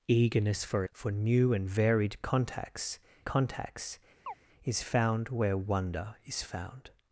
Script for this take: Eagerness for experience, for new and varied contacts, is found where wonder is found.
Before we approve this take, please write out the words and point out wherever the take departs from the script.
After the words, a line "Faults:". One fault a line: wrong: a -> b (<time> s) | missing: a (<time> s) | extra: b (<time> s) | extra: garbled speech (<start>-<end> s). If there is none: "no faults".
Eagerness for for new and varied contacts contacts, is found where wonder is found.
Faults:
missing: experience (0.8 s)
extra: contacts (3.2 s)